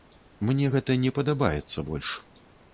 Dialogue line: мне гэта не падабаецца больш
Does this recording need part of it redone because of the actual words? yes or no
no